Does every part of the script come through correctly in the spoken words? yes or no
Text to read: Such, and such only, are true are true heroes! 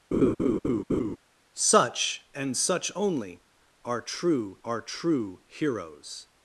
yes